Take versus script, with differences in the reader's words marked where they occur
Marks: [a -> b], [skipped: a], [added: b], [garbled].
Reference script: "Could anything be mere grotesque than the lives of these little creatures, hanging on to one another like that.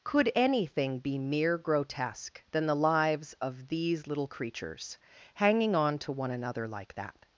"Could anything be mere grotesque than the lives of these little creatures, hanging on to one another like that.